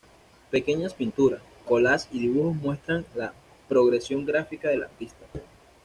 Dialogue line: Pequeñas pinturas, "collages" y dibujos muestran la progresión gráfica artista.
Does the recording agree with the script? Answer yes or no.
no